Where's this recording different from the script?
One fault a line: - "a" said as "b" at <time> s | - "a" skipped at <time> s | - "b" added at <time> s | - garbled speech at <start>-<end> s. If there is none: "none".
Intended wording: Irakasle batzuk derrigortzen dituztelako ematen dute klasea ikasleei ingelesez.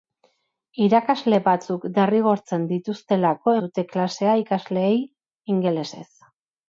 - "ematen" skipped at 3.5 s